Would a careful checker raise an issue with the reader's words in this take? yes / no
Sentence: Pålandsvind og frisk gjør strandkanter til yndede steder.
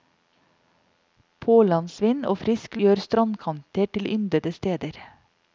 no